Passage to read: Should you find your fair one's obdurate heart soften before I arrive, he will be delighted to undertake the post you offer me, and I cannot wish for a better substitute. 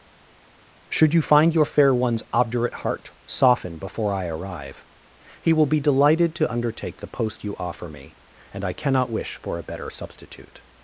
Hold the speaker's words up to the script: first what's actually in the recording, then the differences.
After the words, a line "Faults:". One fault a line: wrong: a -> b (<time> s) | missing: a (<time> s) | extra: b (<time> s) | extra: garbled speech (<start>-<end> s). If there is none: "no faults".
Should you find your fair one's obdurate heart soften before I arrive, he will be delighted to undertake the post you offer me, and I cannot wish for a better substitute.
Faults:
no faults